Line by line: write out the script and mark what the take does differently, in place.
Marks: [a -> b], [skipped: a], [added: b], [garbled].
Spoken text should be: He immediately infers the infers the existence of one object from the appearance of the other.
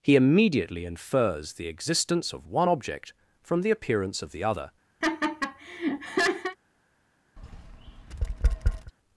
He immediately infers the [skipped: infers the] existence of one object from the appearance of the other.